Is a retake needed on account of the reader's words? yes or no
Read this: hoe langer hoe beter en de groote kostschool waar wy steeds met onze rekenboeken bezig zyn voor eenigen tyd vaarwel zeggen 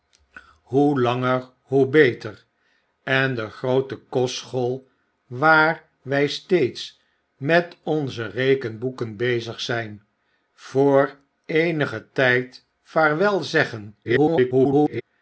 yes